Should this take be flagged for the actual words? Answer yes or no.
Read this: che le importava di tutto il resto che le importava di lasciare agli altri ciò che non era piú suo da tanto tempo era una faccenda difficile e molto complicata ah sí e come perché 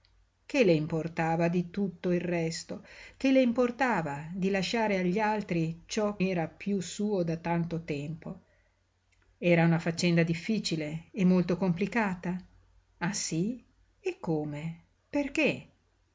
yes